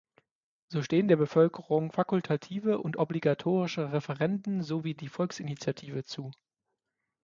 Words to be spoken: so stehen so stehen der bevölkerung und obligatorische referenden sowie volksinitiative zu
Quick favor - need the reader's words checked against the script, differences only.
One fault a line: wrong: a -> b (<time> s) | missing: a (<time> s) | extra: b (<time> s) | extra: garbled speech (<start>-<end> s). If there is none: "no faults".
missing: so stehen (1.1 s)
extra: fakultative (1.9 s)
extra: die (4.9 s)